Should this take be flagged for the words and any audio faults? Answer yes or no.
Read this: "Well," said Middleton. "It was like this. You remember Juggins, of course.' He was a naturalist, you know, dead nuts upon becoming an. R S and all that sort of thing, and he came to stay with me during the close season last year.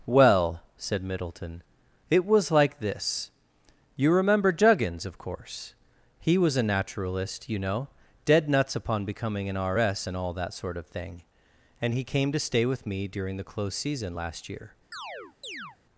yes